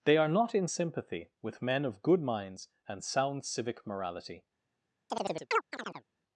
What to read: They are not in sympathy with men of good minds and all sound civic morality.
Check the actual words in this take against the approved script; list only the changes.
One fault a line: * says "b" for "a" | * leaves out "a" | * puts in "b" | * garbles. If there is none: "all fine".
* leaves out "all"